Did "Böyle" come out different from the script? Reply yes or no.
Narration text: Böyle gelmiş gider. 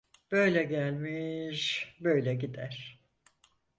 no